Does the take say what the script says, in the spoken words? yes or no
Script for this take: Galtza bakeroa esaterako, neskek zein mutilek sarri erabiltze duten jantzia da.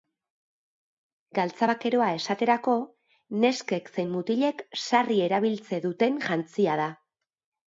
yes